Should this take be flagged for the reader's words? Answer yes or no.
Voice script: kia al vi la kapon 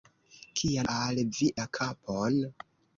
no